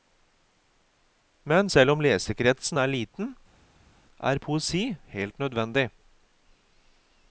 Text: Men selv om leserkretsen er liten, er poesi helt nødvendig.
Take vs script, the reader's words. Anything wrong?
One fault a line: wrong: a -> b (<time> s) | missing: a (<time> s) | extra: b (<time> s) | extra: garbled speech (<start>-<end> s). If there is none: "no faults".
no faults